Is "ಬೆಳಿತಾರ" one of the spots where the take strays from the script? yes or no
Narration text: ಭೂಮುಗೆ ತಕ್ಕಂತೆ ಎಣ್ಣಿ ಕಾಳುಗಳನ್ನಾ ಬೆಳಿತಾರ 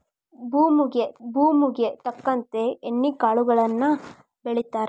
no